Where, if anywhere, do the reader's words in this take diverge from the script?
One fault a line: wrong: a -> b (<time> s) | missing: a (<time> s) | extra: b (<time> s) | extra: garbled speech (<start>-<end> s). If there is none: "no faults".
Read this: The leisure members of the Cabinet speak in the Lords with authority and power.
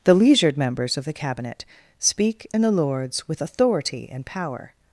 wrong: leisure -> leisured (0.1 s)